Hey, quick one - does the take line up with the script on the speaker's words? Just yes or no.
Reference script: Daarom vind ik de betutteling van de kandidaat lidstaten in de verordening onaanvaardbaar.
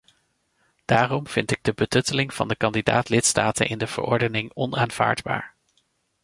yes